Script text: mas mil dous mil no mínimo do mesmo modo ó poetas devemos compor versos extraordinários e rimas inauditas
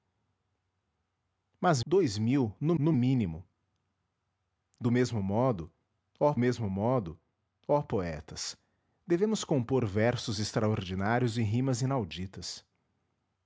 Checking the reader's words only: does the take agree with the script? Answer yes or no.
no